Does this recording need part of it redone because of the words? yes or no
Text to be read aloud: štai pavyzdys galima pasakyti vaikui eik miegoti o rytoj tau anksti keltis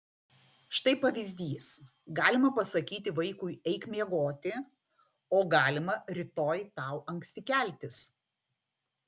yes